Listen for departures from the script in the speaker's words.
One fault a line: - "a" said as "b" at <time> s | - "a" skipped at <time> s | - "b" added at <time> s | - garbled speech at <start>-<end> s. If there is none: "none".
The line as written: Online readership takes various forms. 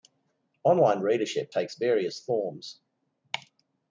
none